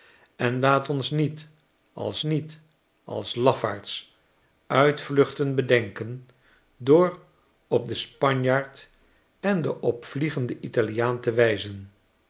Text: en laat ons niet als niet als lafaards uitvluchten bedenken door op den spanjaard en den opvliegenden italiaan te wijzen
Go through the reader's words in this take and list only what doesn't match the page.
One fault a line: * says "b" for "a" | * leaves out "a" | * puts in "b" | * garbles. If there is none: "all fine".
all fine